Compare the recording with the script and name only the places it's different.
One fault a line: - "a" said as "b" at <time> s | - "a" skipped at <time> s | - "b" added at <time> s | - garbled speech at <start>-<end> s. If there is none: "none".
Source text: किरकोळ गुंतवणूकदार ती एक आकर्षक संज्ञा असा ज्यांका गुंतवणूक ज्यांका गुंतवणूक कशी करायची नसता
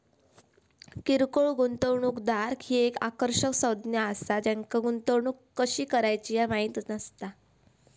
- "ती" said as "ही" at 2.6 s
- "ज्यांका गुंतवणूक कशी करायची" said as "कशी करायची ह्या माहित" at 5.6 s